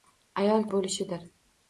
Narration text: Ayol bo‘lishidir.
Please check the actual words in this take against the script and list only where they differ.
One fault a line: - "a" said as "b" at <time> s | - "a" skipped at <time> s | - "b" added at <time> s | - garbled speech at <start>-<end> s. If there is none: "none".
none